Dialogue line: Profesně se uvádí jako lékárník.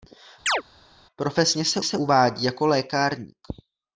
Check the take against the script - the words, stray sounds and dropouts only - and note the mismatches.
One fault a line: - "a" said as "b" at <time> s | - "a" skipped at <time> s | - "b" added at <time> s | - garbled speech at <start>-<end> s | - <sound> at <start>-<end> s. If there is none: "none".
- chirp at 0.5-0.6 s
- "se" added at 1.8 s